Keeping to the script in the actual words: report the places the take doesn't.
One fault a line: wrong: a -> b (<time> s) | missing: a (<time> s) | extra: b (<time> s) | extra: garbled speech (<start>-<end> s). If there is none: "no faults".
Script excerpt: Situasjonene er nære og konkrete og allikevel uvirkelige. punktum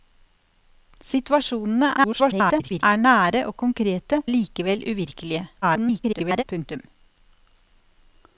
extra: garbled speech (2.0-2.8 s)
missing: og (4.2 s)
extra: garbled speech (5.6-6.4 s)